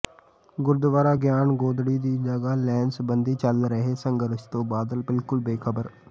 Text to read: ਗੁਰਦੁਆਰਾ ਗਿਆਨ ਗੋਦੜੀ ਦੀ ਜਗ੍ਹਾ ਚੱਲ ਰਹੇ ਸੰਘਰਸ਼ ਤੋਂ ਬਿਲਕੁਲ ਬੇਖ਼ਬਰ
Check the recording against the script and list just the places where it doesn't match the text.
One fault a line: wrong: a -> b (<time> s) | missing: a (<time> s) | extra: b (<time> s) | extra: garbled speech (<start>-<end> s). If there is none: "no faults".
extra: ਲੈਣ ਸਬੰਧੀ (2.6 s)
extra: ਬਾਦਲ (4.7 s)